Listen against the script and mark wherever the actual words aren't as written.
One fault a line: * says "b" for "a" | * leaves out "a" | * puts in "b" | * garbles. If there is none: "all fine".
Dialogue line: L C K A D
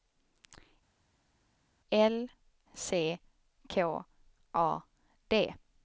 all fine